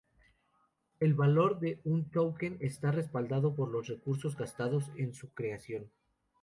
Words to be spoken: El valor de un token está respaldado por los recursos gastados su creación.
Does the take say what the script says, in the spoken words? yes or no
no